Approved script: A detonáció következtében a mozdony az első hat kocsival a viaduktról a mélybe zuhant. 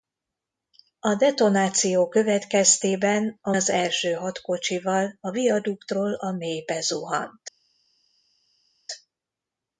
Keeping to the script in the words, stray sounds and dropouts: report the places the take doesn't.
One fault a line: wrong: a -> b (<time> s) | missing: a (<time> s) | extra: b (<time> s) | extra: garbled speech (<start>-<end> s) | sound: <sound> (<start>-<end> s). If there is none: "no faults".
missing: mozdony (3.5 s)